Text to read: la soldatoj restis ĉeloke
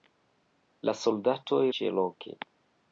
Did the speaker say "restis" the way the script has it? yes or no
no